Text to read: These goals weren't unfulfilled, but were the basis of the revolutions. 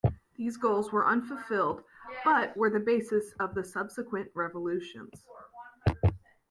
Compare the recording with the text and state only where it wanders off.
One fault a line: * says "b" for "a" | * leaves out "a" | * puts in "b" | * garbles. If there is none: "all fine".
* says "were" for "weren't"
* puts in "subsequent"